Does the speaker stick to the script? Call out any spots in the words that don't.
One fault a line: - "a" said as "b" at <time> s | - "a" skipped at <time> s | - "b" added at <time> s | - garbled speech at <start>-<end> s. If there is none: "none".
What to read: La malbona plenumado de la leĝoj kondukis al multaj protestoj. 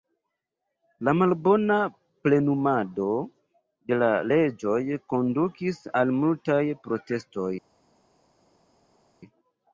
none